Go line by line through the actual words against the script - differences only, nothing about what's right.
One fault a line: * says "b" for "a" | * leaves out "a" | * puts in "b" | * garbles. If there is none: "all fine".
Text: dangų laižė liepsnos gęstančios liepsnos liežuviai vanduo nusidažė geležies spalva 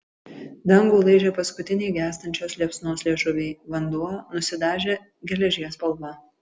* says "paskutiniai" for "liepsnos"